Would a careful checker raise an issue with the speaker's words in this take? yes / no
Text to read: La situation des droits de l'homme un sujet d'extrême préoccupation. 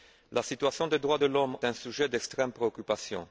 no